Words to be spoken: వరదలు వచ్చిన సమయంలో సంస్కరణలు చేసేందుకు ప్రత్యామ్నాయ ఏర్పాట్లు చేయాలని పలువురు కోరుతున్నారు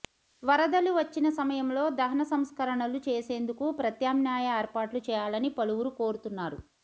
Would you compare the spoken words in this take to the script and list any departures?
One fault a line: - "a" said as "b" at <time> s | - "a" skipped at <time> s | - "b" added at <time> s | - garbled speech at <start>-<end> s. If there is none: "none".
- "దహన" added at 2.0 s